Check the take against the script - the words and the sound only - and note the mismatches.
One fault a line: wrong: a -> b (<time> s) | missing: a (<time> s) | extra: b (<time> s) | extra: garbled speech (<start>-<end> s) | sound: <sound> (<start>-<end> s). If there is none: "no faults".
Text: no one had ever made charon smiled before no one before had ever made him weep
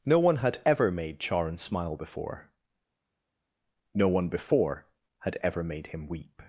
wrong: smiled -> smile (1.6 s)